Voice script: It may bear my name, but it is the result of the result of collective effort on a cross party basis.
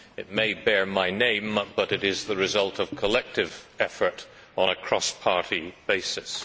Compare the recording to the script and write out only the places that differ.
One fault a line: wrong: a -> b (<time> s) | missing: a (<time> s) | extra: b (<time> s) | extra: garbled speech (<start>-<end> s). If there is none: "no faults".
missing: the result of (3.0 s)